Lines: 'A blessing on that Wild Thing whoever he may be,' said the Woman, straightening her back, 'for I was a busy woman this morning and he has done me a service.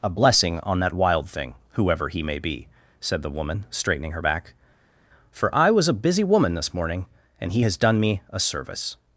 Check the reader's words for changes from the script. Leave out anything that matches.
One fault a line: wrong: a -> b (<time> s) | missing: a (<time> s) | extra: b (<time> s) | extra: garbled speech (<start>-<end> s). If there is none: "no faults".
no faults